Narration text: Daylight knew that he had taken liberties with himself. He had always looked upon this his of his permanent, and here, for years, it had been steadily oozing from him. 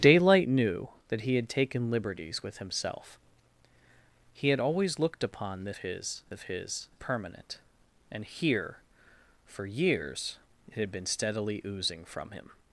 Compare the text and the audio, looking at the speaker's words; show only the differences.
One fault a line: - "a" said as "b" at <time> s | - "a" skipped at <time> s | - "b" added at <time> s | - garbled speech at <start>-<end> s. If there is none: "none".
none